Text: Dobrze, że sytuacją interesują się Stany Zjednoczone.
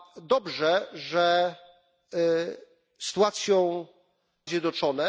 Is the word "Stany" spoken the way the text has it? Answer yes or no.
no